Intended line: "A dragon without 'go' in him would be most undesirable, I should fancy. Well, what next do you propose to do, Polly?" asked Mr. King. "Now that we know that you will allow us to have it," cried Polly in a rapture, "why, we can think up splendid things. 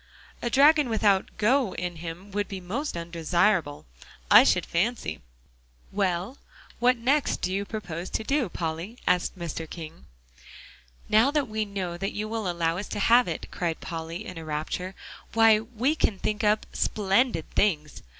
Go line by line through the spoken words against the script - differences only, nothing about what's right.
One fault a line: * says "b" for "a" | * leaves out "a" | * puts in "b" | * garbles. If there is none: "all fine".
all fine